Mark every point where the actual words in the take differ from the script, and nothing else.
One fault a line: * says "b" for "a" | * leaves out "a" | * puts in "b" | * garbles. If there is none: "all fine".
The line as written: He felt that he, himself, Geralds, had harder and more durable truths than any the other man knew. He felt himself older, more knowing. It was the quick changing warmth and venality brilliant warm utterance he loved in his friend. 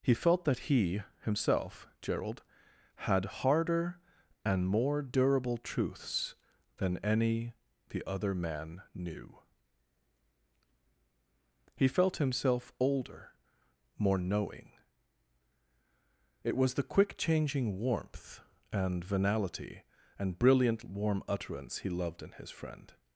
* says "Gerald" for "Geralds"
* puts in "and"